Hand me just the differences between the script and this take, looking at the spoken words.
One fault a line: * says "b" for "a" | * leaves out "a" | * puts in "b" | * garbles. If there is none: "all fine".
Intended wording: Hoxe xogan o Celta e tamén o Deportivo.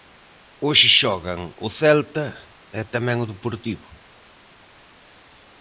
all fine